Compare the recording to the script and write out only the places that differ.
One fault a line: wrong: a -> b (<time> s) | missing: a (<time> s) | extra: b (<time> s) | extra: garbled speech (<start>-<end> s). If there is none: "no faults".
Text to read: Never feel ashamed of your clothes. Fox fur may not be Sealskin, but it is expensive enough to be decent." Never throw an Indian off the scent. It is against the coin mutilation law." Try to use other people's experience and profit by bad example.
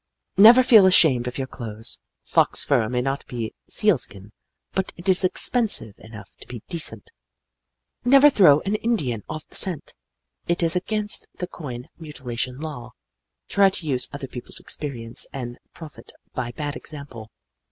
no faults